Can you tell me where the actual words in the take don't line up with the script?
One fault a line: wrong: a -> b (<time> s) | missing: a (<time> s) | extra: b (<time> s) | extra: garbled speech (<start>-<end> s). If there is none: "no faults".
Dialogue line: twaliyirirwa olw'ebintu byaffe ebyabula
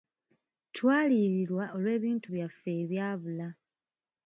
no faults